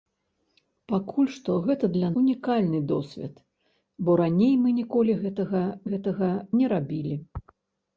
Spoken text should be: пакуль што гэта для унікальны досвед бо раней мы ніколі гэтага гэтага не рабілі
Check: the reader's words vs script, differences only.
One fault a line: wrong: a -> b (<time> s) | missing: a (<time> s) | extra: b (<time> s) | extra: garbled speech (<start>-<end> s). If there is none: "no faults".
no faults